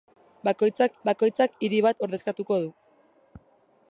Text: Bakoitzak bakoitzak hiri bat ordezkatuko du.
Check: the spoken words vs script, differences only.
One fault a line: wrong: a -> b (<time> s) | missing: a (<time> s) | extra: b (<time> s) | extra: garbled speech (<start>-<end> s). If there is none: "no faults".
no faults